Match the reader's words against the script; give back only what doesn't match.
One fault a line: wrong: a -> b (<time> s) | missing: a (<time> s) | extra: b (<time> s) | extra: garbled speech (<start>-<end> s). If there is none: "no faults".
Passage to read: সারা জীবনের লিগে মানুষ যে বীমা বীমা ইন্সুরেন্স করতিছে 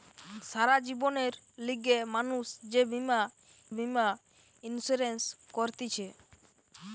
no faults